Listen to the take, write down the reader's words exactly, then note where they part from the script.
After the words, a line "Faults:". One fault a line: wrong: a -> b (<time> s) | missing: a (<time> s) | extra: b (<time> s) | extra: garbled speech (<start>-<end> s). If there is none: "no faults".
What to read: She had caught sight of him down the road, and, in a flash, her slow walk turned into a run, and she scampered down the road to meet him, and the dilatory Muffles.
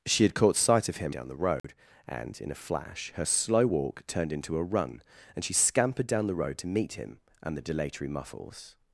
She had caught sight of him down the road, and, in a flash, her slow walk turned into a run, and she scampered down the road to meet him, and the dilatory Muffles.
Faults:
no faults